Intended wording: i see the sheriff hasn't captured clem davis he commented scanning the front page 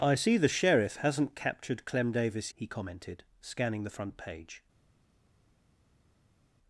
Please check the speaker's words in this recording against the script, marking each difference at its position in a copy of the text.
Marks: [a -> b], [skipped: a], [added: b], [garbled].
i see the sheriff hasn't captured clem davis he commented scanning the front page